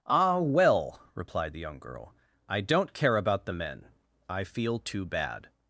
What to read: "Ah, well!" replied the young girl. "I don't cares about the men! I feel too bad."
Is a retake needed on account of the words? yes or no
yes